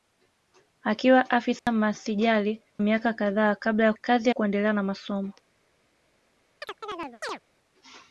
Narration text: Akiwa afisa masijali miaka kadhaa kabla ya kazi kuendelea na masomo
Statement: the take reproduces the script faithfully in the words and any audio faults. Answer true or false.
false